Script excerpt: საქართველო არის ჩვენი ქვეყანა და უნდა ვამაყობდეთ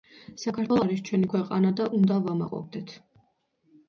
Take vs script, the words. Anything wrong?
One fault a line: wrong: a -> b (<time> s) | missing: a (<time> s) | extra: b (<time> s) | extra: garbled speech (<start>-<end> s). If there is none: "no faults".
no faults